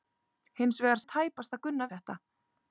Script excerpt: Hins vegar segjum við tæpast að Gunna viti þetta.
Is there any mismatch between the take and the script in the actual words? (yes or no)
yes